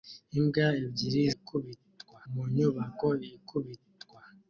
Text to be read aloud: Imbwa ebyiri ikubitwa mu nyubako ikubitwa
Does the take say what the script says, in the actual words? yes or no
yes